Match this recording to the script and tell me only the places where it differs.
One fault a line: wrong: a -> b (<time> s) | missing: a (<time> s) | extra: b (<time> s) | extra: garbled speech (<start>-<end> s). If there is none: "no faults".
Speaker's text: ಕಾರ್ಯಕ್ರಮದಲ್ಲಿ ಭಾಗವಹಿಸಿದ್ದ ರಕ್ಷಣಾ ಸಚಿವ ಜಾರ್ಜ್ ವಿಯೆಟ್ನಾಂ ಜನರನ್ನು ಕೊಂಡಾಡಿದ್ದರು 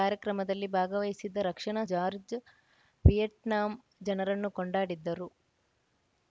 missing: ಸಚಿವ (1.8 s)